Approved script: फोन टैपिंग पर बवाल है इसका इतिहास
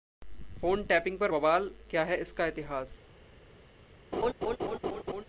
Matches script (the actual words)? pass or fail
fail